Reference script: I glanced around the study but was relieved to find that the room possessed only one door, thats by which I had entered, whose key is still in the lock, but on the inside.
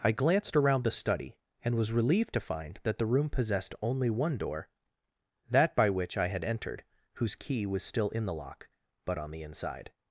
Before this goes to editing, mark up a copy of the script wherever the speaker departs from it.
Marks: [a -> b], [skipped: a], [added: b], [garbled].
I glanced around the study [but -> and] was relieved to find that the room possessed only one door, [thats -> that] by which I had entered, whose key [is -> was] still in the lock, but on the inside.